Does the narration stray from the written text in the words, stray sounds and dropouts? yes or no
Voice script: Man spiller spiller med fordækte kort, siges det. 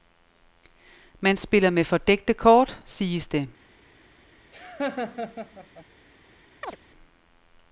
yes